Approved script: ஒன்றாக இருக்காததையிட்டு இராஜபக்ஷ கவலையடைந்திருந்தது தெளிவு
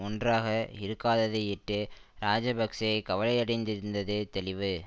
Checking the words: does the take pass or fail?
pass